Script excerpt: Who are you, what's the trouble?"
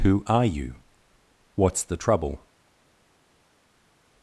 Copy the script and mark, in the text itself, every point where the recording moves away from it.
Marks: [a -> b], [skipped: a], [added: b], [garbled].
Who are you, what's the trouble?"